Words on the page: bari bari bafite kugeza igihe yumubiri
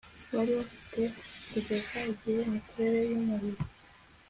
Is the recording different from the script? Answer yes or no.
yes